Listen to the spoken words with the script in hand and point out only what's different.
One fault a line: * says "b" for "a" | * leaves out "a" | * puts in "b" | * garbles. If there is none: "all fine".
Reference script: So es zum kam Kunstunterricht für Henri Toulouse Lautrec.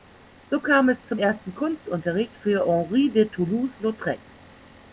* puts in "kam"
* says "ersten" for "kam"
* puts in "de"